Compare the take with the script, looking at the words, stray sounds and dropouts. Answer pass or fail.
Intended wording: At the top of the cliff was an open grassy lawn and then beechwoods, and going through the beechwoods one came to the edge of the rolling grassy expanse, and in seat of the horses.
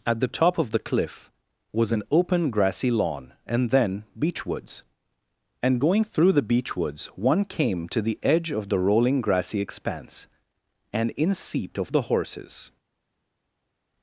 pass